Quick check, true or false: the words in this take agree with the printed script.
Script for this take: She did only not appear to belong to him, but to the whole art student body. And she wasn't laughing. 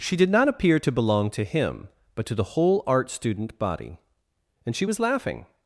false